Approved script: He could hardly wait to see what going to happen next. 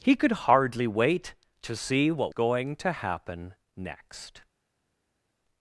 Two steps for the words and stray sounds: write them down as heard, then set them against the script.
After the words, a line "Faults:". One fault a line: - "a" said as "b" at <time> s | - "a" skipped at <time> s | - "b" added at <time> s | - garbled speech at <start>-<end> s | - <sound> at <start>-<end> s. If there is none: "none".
He could hardly wait to see what going to happen next.
Faults:
none